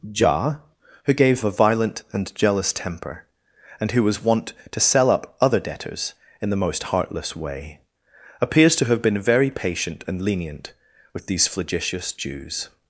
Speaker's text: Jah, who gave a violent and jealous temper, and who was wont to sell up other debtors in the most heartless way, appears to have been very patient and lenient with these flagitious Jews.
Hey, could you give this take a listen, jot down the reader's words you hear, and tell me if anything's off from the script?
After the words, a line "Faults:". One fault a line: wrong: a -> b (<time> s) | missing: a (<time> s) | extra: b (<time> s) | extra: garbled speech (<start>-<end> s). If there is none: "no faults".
Jah, who gave a violent and jealous temper, and who was wont to sell up other debtors in the most heartless way, appears to have been very patient and lenient with these flagitious Jews.
Faults:
no faults